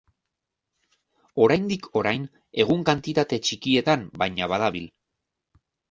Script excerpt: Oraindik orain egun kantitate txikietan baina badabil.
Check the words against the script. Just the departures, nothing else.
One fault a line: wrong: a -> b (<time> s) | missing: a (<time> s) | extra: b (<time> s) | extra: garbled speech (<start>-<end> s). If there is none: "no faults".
no faults